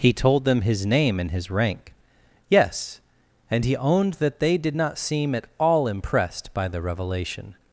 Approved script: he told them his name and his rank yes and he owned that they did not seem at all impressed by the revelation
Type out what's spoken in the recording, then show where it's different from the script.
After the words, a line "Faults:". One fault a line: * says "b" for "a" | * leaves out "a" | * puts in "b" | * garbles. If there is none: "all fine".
he told them his name and his rank yes and he owned that they did not seem at all impressed by the revelation
Faults:
all fine